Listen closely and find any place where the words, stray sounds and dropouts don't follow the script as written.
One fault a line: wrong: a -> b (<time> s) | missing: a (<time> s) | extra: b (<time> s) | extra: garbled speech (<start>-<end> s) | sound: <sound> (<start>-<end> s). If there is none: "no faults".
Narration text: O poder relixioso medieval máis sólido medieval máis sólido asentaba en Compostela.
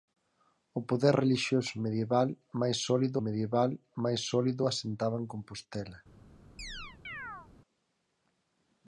sound: chirp (6.6-7.5 s)